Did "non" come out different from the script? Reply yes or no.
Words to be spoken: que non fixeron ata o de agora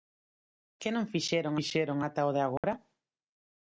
no